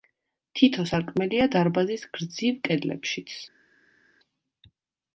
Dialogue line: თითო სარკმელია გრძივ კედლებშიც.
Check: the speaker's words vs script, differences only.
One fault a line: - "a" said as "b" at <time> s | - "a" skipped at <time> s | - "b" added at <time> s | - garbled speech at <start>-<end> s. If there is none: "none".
- "დარბაზის" added at 1.6 s